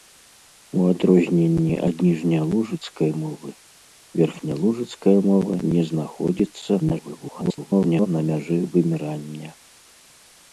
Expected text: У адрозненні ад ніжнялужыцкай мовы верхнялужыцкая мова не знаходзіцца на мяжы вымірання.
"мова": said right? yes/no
yes